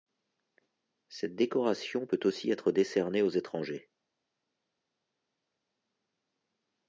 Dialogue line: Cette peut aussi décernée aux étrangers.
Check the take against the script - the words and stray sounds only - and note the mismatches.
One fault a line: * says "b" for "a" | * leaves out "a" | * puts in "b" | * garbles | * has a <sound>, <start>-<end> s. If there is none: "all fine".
* puts in "décoration"
* puts in "être"